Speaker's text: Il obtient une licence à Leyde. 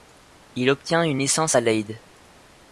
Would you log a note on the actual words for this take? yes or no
no